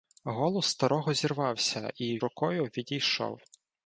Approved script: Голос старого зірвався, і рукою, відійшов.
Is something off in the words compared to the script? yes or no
no